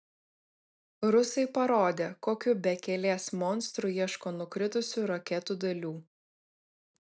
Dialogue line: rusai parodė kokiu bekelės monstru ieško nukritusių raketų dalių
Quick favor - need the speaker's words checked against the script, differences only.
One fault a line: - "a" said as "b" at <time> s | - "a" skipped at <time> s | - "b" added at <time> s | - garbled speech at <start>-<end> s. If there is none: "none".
none